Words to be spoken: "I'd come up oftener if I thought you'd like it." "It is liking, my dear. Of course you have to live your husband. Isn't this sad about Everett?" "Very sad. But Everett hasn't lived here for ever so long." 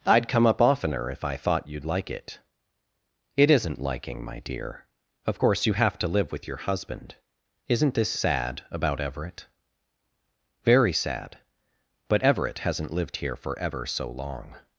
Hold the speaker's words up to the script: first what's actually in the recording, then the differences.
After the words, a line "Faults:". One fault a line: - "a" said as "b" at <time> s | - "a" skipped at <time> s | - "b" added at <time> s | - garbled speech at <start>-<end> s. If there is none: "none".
"I'd come up oftener if I thought you'd like it." "It isn't liking, my dear. Of course you have to live with your husband. Isn't this sad about Everett?" "Very sad. But Everett hasn't lived here for ever so long."
Faults:
- "is" said as "isn't" at 3.5 s
- "with" added at 6.3 s